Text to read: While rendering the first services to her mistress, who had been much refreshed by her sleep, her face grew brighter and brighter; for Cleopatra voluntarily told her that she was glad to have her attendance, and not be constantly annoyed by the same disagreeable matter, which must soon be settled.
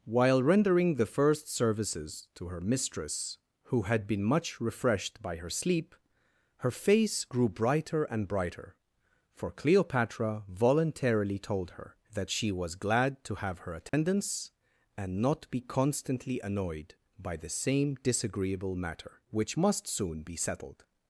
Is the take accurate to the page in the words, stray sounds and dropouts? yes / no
no